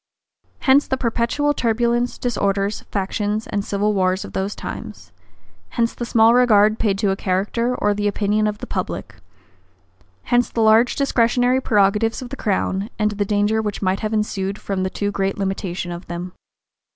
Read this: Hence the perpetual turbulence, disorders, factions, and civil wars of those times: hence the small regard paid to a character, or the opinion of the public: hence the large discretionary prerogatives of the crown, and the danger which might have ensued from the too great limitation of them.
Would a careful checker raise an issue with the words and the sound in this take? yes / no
no